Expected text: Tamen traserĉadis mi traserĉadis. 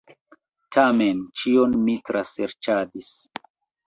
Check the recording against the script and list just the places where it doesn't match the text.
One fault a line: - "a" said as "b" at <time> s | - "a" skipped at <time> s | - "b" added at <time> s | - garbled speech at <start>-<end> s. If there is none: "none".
- "traserĉadis" said as "ĉion" at 1.4 s